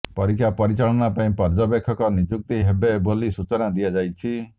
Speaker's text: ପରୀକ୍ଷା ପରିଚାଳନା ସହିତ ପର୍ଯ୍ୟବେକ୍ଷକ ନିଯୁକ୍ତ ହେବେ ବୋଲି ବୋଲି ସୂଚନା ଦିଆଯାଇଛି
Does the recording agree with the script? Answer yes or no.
no